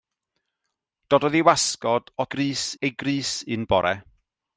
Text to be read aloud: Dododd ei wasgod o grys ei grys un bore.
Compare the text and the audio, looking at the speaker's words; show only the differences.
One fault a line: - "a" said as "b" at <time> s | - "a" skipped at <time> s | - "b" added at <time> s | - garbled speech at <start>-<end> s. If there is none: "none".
none